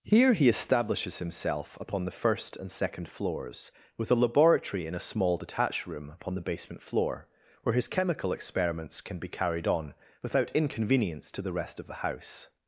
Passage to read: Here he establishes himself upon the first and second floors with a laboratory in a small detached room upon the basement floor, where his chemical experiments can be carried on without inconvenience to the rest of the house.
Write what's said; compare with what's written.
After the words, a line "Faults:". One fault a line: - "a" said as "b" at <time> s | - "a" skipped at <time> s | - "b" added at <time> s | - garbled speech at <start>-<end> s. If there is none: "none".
Here he establishes himself upon the first and second floors with a laboratory in a small detached room upon the basement floor, where his chemical experiments can be carried on without inconvenience to the rest of the house.
Faults:
none